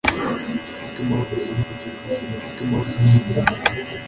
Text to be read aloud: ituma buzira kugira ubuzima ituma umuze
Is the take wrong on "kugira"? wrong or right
right